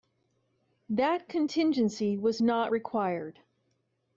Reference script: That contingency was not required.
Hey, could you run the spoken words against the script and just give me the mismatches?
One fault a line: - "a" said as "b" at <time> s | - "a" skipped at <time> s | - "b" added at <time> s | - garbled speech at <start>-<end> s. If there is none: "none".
none